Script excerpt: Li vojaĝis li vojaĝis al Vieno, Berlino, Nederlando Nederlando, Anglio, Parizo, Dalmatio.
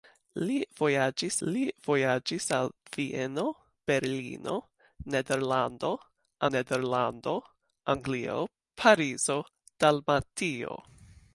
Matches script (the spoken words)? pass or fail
pass